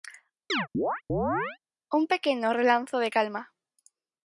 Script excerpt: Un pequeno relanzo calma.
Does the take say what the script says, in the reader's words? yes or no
no